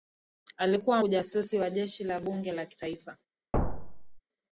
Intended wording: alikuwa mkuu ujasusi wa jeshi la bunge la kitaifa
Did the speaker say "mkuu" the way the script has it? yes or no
no